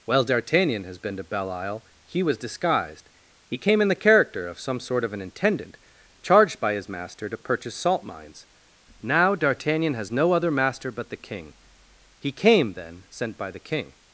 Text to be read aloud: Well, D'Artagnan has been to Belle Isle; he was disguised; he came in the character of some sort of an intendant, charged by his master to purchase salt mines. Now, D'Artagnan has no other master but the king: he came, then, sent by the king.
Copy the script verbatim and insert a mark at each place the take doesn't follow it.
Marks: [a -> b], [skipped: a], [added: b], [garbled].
Well, D'Artagnan has been to Belle Isle; he was disguised; he came in the character of some sort of an intendant, charged by his master to purchase salt mines. Now, D'Artagnan has no other master but the king: he came, then, sent by the king.